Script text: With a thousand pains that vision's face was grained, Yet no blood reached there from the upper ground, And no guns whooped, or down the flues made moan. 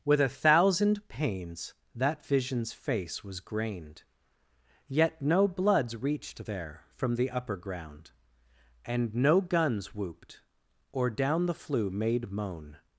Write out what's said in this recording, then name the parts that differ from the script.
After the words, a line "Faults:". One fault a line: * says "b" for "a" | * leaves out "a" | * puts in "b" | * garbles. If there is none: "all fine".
With a thousand pains that vision's face was grained, Yet no bloods reached there from the upper ground, And no guns whooped, or down the flue made moan.
Faults:
* says "bloods" for "blood"
* says "flue" for "flues"